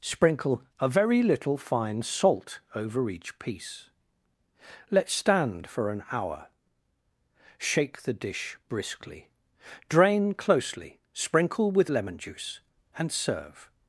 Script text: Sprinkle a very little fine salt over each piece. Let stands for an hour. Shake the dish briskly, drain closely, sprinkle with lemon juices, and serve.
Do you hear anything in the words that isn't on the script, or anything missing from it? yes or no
yes